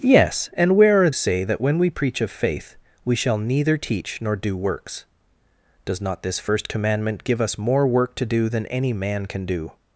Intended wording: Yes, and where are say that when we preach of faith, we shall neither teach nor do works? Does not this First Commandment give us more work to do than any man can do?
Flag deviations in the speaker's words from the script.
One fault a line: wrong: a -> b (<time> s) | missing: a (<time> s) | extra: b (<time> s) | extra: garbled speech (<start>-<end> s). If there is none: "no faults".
no faults